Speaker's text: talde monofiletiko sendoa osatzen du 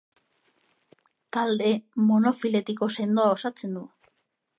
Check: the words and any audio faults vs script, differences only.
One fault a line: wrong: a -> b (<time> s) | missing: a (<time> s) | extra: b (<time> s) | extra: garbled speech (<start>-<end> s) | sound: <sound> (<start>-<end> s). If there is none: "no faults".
no faults